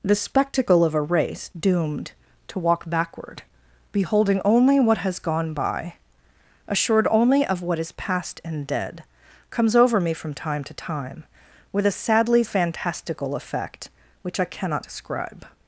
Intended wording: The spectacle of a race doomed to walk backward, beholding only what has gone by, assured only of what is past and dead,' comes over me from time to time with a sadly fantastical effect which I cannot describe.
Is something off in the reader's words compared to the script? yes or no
no